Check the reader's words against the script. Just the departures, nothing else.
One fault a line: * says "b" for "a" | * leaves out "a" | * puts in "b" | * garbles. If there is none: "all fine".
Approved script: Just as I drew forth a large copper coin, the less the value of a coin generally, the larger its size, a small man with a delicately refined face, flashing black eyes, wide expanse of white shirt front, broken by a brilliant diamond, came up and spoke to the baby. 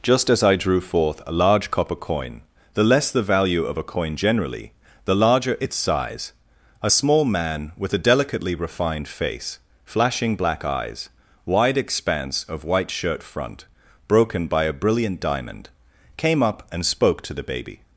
all fine